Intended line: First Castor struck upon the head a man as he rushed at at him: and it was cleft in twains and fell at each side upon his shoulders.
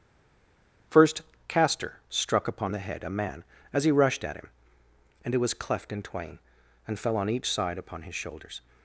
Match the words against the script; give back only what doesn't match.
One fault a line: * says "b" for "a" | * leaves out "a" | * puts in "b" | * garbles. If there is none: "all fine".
* leaves out "at"
* says "twain" for "twains"
* says "on" for "at"